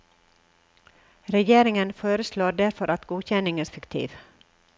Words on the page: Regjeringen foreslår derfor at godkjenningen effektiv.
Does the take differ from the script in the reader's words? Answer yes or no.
no